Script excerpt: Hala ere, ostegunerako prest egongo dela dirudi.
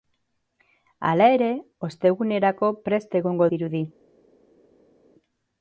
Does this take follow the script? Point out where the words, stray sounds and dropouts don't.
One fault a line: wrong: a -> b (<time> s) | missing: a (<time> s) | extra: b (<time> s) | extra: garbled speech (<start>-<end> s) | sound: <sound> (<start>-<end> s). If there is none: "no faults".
missing: dela (3.5 s)